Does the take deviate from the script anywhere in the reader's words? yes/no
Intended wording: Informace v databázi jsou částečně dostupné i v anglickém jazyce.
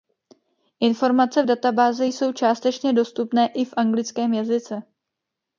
no